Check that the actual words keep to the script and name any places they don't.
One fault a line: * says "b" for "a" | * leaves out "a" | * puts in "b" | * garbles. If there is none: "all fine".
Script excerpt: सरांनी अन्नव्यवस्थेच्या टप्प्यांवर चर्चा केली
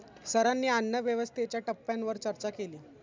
all fine